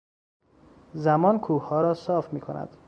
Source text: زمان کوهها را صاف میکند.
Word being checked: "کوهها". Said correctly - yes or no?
yes